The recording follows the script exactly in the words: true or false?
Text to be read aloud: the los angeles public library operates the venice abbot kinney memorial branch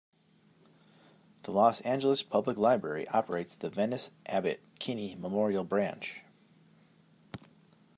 true